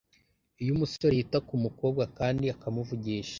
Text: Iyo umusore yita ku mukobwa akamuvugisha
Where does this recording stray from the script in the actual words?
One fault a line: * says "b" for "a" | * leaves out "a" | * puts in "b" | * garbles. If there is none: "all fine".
* puts in "kandi"